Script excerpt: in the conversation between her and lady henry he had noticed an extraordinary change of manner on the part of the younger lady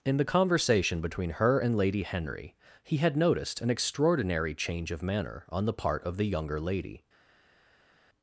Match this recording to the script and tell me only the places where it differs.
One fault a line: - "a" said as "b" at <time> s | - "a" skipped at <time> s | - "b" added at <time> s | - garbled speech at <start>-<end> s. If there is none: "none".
none